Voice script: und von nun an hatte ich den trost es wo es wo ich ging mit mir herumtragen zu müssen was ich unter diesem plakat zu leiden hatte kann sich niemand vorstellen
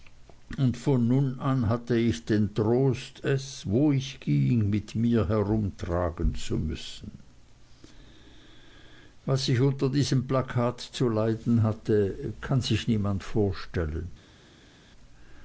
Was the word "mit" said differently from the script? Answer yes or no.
no